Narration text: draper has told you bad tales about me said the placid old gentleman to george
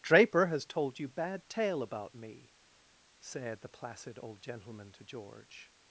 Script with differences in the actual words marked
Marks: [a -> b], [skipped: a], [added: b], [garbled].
draper has told you bad [tales -> tale] about me said the placid old gentleman to george